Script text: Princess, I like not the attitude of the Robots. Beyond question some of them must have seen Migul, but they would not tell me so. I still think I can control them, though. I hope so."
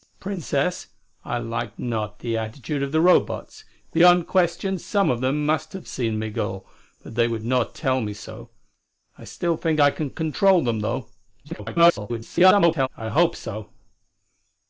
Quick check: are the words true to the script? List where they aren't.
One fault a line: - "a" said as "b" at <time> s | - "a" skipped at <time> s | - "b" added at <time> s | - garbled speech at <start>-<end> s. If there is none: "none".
- garbled speech at 11.4-12.9 s